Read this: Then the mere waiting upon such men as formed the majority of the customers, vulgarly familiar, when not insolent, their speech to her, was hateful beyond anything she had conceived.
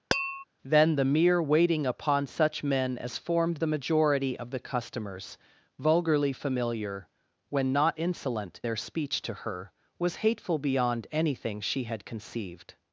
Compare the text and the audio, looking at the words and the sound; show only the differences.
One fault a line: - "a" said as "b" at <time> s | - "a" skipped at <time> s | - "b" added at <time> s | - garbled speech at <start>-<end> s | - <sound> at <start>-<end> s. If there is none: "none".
- tap at 0.1-0.4 s